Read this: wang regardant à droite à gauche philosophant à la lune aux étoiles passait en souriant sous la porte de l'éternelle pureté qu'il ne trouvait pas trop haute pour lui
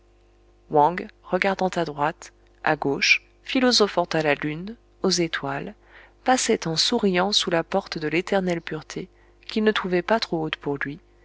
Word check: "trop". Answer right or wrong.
right